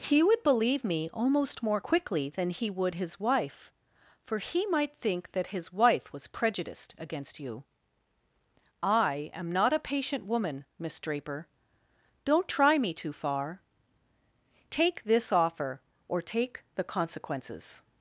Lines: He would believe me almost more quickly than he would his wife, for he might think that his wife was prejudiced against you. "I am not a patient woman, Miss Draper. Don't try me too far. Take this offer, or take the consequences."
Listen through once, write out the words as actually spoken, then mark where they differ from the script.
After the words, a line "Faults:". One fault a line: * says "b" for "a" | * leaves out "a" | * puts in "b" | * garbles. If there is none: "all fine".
He would believe me almost more quickly than he would his wife, for he might think that his wife was prejudiced against you. "I am not a patient woman, Miss Draper. Don't try me too far. Take this offer, or take the consequences."
Faults:
all fine